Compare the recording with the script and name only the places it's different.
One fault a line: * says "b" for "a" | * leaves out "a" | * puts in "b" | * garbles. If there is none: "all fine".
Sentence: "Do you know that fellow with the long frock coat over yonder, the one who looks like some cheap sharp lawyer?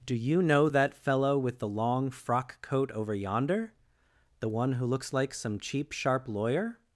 all fine